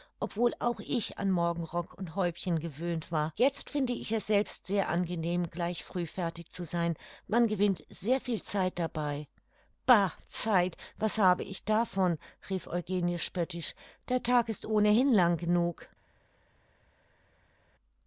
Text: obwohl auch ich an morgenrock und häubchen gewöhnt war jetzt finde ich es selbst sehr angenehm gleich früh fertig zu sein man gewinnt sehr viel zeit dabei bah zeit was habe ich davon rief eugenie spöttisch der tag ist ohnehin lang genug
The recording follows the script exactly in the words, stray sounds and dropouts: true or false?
true